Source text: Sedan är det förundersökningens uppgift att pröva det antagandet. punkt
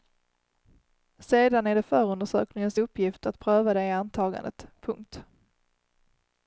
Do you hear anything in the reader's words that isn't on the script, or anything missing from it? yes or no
no